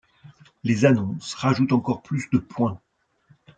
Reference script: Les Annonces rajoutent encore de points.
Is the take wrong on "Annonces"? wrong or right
right